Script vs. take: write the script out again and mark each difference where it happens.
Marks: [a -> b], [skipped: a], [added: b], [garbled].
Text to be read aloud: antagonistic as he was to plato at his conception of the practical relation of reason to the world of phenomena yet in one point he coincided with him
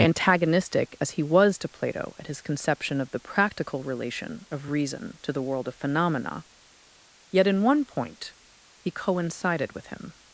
antagonistic as he was to plato at his conception of the practical relation of reason to the world of phenomena yet in one point he coincided with him